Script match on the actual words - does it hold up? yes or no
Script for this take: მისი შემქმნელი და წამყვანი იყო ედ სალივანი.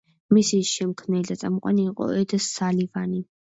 yes